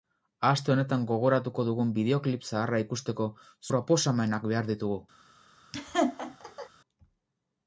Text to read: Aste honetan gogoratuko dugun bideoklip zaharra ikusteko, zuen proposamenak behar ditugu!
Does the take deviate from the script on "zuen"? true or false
true